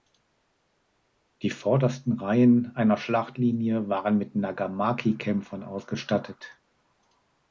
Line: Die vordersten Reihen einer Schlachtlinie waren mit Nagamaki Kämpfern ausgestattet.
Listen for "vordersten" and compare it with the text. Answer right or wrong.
right